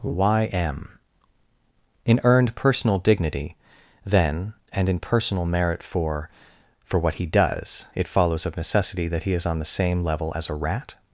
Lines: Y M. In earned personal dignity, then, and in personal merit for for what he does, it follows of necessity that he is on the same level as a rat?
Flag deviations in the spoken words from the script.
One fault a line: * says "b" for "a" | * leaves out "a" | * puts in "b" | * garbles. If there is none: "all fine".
all fine